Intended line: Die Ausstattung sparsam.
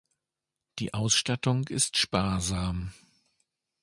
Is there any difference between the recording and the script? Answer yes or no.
yes